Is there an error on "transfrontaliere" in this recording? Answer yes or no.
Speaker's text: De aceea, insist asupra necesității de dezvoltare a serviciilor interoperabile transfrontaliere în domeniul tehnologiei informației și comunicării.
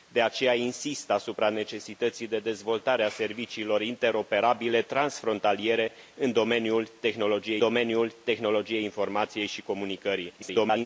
no